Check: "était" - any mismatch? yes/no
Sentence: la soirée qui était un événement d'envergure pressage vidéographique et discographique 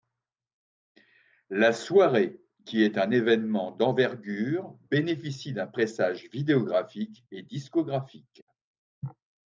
yes